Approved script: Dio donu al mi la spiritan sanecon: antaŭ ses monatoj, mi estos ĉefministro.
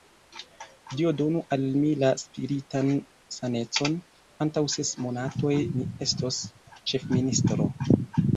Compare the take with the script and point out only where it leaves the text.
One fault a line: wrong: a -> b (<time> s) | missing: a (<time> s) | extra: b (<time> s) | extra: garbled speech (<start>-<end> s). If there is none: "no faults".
no faults